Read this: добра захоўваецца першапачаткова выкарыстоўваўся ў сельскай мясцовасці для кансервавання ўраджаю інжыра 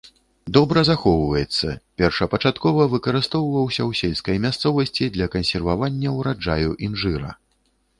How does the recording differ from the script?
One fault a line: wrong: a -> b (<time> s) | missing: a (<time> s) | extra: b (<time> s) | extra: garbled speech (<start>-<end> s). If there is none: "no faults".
no faults